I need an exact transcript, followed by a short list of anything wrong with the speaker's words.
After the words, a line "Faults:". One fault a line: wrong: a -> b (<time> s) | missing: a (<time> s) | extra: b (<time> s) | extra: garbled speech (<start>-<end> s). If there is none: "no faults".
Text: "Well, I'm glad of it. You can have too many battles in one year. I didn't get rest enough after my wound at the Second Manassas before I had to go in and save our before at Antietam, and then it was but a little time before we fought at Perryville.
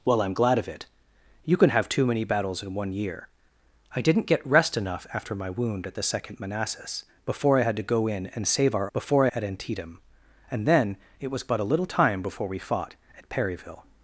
"Well, I'm glad of it. You can have too many battles in one year. I didn't get rest enough after my wound at the Second Manassas before I had to go in and save our before at Antietam, and then it was but a little time before we fought at Perryville.
Faults:
no faults